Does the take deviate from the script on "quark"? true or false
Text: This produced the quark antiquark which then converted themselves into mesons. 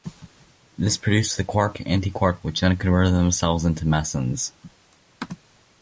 false